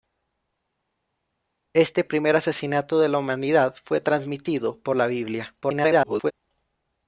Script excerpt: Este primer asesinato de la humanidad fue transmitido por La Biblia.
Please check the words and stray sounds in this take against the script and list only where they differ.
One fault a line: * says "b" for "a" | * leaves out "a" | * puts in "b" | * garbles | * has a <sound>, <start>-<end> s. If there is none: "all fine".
* garbles